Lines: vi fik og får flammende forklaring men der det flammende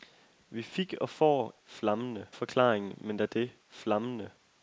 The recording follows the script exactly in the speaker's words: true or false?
true